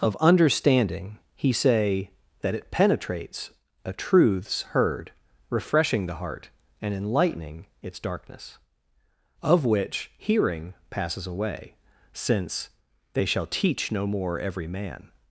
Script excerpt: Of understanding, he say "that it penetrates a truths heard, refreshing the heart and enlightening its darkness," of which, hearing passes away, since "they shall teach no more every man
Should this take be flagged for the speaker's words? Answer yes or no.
no